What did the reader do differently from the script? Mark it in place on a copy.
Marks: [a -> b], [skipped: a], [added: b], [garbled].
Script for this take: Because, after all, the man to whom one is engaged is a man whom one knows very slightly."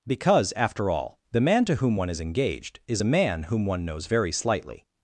Because, after all, the man to whom one is engaged is a man whom one knows very slightly."